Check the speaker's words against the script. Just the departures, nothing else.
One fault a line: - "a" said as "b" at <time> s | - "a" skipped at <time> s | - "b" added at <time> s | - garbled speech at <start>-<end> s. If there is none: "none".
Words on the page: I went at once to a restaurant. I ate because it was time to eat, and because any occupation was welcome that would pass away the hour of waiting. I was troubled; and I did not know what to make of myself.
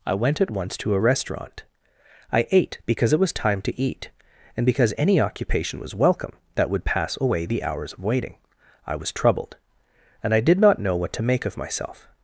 - "hour" said as "hours" at 7.6 s